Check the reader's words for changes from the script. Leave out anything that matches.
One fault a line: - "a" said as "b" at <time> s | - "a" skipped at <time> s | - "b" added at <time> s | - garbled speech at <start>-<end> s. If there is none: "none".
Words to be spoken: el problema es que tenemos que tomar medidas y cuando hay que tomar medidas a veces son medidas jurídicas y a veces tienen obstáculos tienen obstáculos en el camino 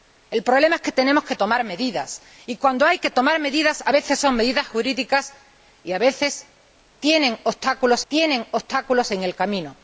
none